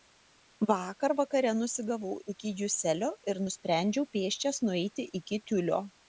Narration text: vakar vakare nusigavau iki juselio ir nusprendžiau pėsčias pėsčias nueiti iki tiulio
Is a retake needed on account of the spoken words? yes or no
yes